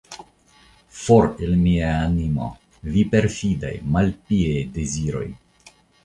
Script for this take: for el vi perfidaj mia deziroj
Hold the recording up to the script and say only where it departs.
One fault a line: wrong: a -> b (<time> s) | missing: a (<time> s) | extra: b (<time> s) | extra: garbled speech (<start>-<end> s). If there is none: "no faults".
extra: mia animo (1.6 s)
wrong: mia -> malpiaj (4.0 s)